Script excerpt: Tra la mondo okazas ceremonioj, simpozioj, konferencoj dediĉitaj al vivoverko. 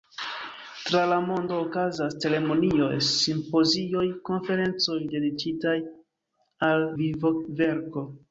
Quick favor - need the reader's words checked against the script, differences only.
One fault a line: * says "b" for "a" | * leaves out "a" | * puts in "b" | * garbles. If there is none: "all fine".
all fine